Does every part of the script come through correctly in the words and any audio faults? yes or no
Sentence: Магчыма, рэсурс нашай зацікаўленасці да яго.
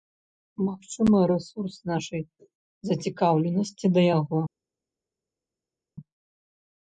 yes